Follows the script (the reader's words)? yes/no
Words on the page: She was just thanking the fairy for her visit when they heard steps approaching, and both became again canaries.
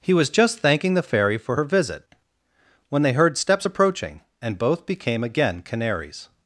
no